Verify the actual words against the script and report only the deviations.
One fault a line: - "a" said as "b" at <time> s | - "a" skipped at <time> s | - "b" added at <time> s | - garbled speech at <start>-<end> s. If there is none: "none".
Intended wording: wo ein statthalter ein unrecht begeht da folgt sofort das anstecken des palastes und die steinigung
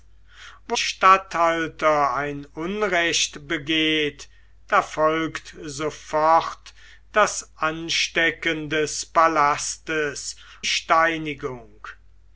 - "ein" skipped at 0.8 s
- "und die" skipped at 10.4 s